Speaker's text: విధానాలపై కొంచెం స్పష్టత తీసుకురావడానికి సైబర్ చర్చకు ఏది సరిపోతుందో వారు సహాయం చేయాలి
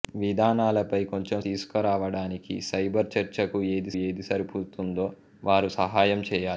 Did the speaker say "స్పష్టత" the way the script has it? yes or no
no